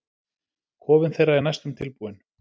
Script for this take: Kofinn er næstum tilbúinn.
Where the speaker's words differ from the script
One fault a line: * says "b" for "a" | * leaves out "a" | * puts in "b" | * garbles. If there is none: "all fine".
* puts in "þeirra"